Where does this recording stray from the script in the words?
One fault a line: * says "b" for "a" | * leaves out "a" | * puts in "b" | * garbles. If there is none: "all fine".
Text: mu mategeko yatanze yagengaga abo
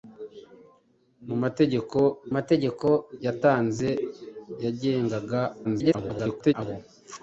* puts in "mategeko"
* garbles